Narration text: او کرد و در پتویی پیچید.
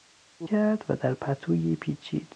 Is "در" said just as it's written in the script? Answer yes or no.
yes